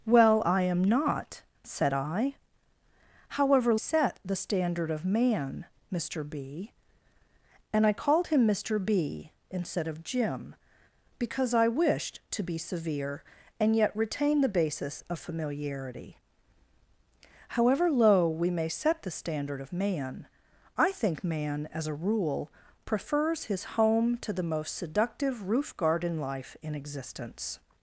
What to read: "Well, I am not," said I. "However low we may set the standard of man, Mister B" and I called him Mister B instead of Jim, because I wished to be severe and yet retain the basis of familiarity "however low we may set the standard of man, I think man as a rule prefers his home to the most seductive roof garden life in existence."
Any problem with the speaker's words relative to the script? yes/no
yes